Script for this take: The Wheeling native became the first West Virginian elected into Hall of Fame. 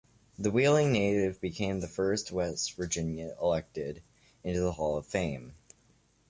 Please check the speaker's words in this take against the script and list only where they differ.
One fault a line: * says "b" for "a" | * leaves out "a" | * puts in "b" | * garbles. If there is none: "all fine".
* puts in "the"